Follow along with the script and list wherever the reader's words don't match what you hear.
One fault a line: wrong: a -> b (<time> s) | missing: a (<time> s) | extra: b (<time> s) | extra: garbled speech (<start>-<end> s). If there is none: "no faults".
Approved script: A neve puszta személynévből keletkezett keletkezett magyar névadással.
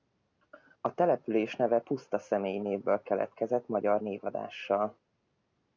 extra: település (0.9 s)
missing: keletkezett (3.7 s)